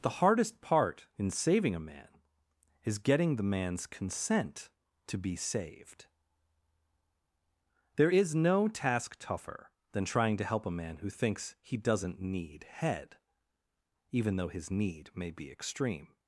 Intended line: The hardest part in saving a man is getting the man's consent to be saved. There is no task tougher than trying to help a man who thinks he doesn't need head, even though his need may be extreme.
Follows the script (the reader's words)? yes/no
yes